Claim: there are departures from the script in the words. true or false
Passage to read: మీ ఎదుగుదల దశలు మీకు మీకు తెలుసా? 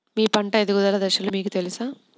true